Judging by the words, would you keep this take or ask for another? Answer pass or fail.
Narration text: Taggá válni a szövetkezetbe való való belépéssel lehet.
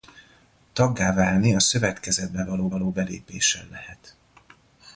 pass